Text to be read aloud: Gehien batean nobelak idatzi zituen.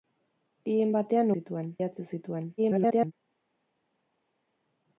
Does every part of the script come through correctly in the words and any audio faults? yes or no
no